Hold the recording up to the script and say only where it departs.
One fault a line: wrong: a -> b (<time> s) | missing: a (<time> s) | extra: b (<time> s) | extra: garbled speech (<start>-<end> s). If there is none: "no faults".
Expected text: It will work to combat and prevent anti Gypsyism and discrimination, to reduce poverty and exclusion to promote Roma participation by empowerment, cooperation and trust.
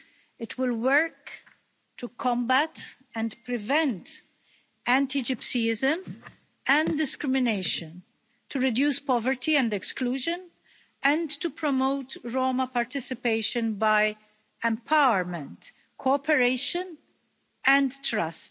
extra: and (11.0 s)